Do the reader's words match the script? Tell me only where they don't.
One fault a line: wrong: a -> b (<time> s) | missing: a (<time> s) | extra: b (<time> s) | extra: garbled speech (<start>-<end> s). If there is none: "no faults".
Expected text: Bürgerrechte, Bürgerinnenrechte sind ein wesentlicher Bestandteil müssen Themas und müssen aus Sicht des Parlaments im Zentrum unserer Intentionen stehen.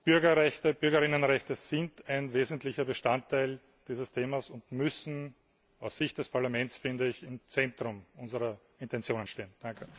wrong: müssen -> dieses (3.9 s)